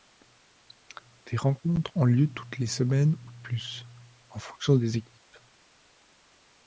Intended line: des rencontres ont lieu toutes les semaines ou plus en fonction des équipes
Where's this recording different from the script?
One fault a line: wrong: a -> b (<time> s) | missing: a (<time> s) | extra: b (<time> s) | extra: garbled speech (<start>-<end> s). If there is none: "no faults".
no faults